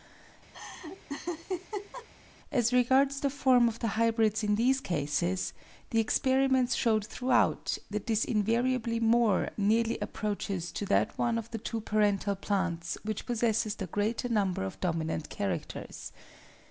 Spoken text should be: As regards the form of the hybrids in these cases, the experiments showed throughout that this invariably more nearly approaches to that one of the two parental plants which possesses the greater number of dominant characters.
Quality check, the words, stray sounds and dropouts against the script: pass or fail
fail